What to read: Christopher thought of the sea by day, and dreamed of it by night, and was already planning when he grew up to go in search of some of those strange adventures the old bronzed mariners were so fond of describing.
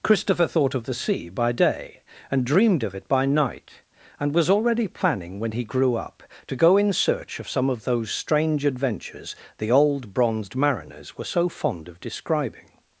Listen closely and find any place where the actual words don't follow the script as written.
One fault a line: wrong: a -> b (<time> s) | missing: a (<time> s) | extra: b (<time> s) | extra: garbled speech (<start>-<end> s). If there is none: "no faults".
no faults